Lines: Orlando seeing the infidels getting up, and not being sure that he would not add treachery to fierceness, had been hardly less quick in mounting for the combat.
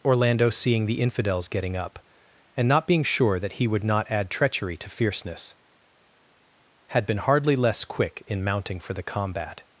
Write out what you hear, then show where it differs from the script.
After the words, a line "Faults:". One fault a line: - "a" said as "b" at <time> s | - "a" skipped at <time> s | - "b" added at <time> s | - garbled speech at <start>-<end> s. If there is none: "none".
Orlando seeing the infidels getting up, and not being sure that he would not add treachery to fierceness, had been hardly less quick in mounting for the combat.
Faults:
none